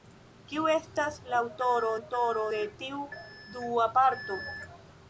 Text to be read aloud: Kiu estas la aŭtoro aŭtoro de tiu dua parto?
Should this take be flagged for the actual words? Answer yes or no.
no